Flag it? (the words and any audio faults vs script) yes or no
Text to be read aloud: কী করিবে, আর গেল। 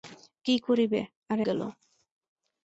no